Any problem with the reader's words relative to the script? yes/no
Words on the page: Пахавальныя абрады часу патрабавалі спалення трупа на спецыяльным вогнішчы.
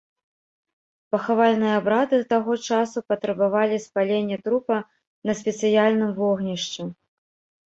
yes